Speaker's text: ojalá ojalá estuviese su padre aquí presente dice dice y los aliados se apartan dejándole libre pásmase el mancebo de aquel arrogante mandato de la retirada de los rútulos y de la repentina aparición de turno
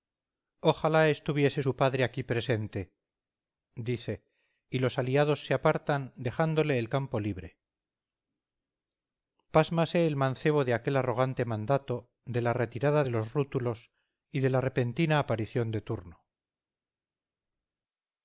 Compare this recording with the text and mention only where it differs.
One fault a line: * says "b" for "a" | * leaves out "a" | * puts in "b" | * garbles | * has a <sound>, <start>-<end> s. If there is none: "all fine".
* leaves out "ojalá"
* leaves out "dice"
* puts in "el campo"